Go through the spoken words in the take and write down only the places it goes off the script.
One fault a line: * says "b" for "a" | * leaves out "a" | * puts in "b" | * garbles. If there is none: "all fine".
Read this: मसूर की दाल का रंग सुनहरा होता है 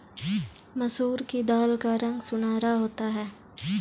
all fine